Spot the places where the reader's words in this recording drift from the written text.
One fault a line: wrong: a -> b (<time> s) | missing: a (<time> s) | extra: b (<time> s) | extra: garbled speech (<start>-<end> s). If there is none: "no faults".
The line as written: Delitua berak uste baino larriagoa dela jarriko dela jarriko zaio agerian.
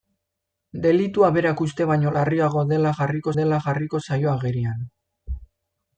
no faults